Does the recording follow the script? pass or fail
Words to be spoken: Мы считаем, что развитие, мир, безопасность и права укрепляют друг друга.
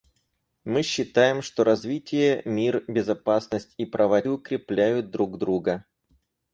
pass